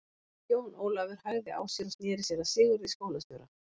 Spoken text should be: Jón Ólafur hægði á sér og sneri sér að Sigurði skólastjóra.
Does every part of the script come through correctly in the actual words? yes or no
yes